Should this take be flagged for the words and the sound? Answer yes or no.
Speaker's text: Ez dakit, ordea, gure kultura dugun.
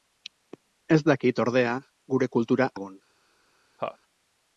yes